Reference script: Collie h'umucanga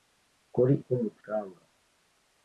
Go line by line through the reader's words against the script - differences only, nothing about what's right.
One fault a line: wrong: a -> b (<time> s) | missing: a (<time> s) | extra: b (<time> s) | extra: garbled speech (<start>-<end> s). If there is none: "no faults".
no faults